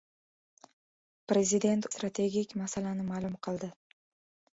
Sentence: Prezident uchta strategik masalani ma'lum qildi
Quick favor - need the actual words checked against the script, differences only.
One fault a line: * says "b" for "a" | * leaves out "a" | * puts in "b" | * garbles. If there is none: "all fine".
* leaves out "uchta"